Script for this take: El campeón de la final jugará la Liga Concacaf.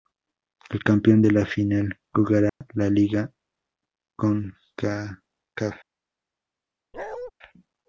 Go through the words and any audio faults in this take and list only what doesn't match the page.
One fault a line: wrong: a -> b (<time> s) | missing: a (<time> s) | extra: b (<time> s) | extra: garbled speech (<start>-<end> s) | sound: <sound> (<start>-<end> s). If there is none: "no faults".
sound: dropout (2.5-2.6 s)
sound: bark (6.9-7.3 s)